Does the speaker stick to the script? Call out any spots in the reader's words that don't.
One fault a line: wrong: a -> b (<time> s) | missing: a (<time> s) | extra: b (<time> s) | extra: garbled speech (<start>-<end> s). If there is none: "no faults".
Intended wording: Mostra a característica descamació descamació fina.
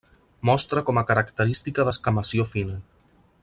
extra: com (0.9 s)
missing: descamació (2.5 s)